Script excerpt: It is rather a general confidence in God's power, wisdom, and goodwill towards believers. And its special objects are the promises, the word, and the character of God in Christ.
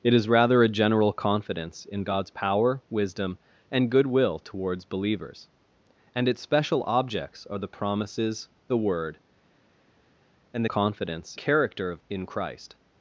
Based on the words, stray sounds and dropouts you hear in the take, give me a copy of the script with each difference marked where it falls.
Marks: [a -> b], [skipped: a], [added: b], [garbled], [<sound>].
It is rather a general confidence in God's power, wisdom, and goodwill towards believers. And its special objects are the promises, the word, and [the -> confidence] character of [skipped: God] in Christ.